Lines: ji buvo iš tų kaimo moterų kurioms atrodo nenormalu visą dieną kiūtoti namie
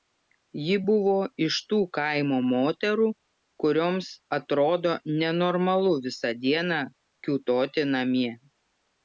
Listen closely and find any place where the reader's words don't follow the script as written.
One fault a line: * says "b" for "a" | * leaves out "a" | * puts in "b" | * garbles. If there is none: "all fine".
all fine